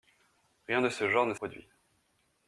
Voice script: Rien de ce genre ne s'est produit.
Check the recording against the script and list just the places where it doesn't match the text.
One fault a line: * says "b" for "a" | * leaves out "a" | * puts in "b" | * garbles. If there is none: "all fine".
* leaves out "s'est"